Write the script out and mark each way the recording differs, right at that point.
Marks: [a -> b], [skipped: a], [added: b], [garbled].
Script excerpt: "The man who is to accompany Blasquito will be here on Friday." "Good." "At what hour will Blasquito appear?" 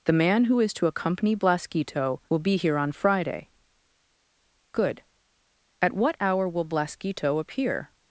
"The man who is to accompany Blasquito will be here on Friday." "Good." "At what hour will Blasquito appear?"